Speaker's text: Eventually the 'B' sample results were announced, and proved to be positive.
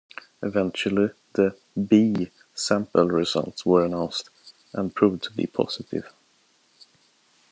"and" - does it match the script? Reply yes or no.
yes